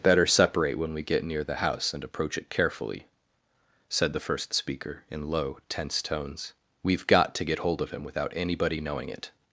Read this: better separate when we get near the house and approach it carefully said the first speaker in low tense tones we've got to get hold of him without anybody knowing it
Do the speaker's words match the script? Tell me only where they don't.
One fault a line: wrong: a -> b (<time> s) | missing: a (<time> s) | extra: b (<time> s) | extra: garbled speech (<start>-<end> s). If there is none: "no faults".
no faults